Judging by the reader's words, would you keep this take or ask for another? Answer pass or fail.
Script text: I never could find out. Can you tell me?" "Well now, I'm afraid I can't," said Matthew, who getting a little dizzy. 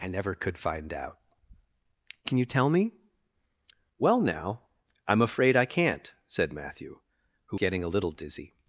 pass